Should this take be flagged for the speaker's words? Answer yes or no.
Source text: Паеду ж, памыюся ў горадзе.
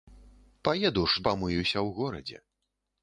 no